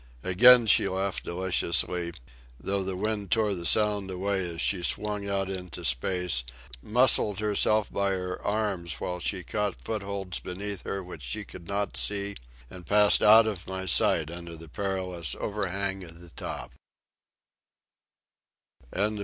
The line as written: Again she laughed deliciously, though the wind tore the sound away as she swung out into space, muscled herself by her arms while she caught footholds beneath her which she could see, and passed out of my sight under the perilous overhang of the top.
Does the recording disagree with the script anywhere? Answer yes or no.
yes